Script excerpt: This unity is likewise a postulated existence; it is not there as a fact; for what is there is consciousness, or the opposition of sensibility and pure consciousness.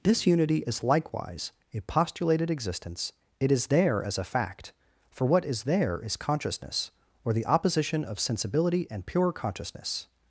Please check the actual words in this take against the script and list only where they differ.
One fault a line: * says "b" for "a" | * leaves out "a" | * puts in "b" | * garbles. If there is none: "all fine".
* leaves out "not"